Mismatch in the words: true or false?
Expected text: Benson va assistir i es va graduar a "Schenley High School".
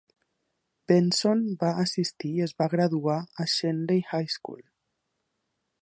false